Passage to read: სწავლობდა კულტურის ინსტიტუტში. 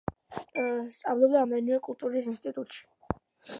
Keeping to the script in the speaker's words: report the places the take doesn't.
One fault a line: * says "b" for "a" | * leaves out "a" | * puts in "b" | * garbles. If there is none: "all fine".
* puts in "რამდენიმე"